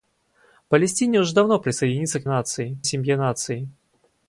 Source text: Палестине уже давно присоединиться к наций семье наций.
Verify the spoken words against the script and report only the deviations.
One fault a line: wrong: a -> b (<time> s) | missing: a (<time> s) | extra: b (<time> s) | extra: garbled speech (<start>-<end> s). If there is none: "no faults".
no faults